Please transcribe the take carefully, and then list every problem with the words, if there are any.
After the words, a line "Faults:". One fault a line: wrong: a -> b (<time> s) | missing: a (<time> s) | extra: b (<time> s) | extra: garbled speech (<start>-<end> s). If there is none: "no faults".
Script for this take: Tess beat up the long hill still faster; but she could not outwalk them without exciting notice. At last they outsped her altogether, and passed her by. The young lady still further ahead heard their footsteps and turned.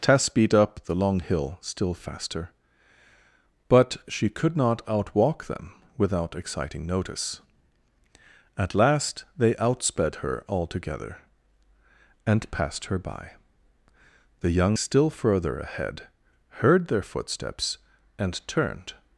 Tess beat up the long hill still faster; but she could not outwalk them without exciting notice. At last they outsped her altogether, and passed her by. The young still further ahead heard their footsteps and turned.
Faults:
missing: lady (14.8 s)